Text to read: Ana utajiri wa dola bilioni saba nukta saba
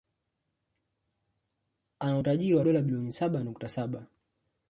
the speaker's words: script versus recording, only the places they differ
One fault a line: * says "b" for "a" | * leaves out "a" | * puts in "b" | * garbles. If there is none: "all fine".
all fine